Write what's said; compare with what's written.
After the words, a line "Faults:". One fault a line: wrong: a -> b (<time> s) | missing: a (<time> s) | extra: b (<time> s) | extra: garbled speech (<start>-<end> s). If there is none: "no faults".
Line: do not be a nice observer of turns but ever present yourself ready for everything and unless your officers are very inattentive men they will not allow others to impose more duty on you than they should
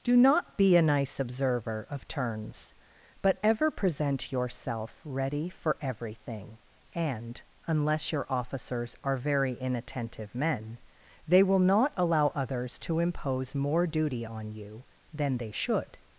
do not be a nice observer of turns but ever present yourself ready for everything and unless your officers are very inattentive men they will not allow others to impose more duty on you than they should
Faults:
no faults